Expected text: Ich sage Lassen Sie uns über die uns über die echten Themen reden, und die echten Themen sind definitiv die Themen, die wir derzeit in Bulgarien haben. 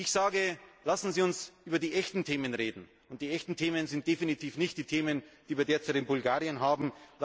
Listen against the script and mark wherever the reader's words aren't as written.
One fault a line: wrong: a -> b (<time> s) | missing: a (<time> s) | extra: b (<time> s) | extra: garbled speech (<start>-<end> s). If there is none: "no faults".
missing: uns über die (1.9 s)
extra: nicht (4.6 s)